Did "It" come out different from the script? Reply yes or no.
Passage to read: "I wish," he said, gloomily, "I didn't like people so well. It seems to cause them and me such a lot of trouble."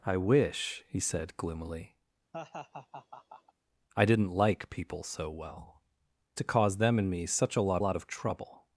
yes